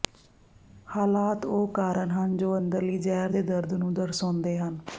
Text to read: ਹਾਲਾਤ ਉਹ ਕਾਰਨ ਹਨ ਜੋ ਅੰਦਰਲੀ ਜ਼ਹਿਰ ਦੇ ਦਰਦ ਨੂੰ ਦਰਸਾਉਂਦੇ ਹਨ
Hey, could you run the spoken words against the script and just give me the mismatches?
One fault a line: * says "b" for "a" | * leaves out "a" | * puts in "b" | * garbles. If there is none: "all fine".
all fine